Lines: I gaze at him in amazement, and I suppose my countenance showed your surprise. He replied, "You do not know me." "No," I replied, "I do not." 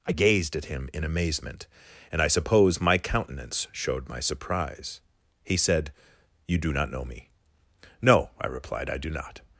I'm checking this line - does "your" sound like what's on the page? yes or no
no